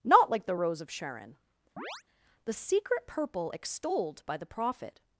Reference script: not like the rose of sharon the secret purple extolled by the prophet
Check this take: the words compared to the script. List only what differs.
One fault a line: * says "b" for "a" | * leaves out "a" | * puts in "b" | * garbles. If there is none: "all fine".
all fine